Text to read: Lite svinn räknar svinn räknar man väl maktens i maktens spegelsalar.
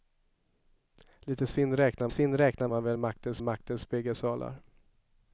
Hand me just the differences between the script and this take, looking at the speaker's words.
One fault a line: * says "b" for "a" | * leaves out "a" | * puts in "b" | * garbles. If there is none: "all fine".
all fine